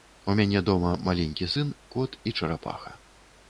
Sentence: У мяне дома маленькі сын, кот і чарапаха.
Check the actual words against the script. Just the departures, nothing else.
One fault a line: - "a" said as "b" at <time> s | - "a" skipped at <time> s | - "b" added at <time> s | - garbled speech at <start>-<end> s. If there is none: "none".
none